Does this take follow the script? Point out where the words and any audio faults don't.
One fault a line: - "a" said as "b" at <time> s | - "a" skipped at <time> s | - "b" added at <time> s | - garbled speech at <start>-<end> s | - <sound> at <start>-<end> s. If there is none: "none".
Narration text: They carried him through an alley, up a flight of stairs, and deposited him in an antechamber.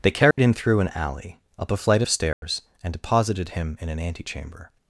- dropout at 0.3-0.4 s
- dropout at 2.3-2.4 s